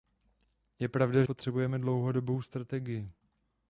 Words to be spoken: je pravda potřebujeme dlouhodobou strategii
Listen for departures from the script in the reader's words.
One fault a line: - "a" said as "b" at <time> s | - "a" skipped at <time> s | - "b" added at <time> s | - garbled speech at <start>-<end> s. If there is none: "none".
none